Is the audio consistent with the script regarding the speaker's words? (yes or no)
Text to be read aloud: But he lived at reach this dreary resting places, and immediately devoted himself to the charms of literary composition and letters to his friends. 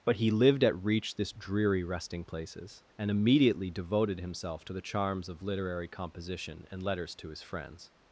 yes